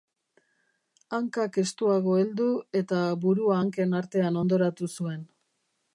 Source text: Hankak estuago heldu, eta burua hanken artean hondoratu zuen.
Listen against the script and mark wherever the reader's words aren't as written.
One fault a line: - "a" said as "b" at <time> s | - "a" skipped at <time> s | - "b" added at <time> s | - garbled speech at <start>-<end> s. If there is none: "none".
none